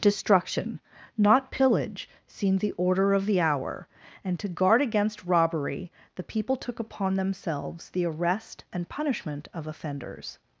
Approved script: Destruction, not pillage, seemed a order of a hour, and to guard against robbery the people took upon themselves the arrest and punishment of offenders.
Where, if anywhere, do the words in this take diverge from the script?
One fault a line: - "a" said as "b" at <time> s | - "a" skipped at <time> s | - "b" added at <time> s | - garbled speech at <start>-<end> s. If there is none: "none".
- "a" said as "the" at 2.6 s
- "a" said as "the" at 3.3 s